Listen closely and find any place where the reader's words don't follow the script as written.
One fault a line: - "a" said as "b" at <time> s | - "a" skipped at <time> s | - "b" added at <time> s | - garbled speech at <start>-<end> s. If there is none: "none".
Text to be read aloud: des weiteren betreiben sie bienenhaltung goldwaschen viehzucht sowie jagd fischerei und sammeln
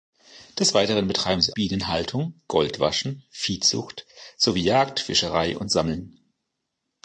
none